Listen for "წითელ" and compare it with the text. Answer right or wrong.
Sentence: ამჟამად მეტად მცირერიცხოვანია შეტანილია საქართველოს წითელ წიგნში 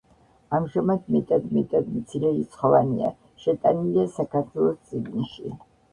wrong